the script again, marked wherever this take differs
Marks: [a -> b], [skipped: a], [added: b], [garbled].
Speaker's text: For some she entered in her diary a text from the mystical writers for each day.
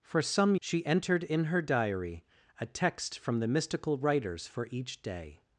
For some she entered in her diary a text from the mystical writers for each day.